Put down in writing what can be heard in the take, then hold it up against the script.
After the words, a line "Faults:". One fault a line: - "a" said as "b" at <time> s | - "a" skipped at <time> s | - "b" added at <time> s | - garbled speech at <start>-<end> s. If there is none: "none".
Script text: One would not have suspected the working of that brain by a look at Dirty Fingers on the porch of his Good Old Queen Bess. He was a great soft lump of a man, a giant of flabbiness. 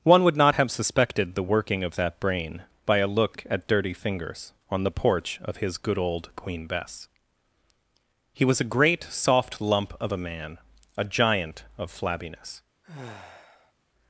One would not have suspected the working of that brain by a look at Dirty Fingers on the porch of his Good Old Queen Bess. He was a great soft lump of a man, a giant of flabbiness.
Faults:
none